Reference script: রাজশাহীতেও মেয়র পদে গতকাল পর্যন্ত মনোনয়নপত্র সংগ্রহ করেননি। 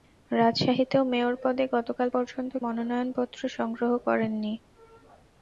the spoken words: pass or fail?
pass